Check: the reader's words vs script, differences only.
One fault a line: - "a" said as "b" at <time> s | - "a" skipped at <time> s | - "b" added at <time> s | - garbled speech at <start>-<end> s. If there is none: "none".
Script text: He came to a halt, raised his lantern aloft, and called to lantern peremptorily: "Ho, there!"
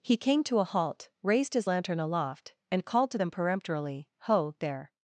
- "lantern" said as "them" at 3.2 s